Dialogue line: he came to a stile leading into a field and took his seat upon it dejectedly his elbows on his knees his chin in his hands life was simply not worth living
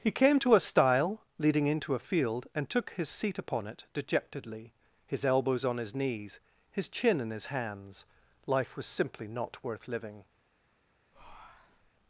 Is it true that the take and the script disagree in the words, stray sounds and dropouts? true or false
true